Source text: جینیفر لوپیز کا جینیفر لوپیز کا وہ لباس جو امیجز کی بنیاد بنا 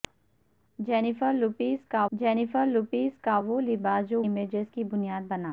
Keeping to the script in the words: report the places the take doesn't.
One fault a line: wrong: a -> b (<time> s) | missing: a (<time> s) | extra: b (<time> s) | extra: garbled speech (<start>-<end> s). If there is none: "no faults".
no faults